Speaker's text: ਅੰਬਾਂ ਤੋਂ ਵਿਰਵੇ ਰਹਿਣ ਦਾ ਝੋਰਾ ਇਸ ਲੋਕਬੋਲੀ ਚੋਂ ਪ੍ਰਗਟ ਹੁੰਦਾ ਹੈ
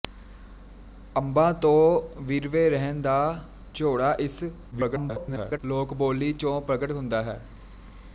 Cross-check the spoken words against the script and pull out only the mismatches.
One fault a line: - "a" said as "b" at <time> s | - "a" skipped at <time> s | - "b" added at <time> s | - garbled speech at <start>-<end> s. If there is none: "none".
- garbled speech at 4.7-5.6 s